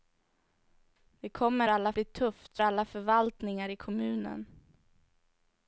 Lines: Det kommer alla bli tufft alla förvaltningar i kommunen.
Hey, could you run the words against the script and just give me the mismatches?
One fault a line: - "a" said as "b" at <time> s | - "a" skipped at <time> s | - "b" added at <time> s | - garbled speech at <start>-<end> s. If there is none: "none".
none